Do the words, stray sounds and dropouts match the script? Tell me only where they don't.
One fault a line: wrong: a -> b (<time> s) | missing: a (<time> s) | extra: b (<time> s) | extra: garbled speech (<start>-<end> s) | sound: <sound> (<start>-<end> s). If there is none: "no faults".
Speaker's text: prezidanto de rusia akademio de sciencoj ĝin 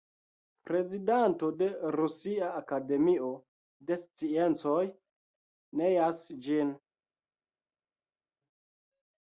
extra: neas (5.8 s)